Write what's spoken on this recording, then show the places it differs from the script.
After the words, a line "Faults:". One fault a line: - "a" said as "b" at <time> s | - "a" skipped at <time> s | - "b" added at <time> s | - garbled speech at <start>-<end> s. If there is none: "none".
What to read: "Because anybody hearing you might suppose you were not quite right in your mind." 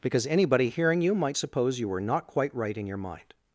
"Because anybody hearing you might suppose you were not quite right in your mind."
Faults:
none